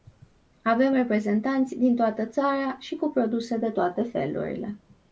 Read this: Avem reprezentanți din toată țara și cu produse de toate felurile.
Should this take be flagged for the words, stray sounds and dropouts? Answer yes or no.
no